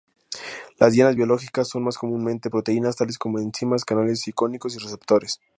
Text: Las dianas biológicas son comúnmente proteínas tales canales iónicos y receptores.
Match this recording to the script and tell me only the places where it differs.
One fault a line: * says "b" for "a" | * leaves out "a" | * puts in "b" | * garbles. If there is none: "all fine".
* puts in "más"
* puts in "como enzimas"